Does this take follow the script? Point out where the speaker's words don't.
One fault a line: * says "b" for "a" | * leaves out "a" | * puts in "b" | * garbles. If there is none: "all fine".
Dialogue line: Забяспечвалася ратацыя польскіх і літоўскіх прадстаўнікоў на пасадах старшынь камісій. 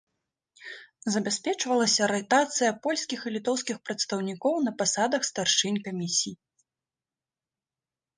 all fine